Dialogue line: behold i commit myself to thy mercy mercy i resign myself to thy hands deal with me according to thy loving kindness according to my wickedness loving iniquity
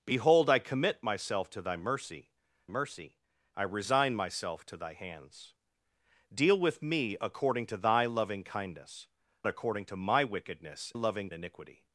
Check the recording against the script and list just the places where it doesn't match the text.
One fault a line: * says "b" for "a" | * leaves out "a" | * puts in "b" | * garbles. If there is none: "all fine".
all fine